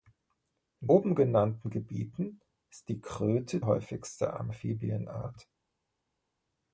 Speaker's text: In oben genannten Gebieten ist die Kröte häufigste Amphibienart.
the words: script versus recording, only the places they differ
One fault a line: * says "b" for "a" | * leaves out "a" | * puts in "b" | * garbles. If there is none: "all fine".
all fine